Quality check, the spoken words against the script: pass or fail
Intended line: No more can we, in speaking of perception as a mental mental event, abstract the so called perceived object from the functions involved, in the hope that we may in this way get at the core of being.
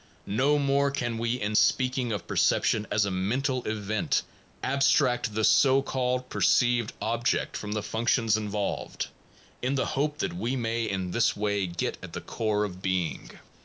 fail